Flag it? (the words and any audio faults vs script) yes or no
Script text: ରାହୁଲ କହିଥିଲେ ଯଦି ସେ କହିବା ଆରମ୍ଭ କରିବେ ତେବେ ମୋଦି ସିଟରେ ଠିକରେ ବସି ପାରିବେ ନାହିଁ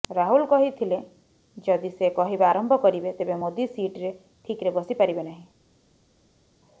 no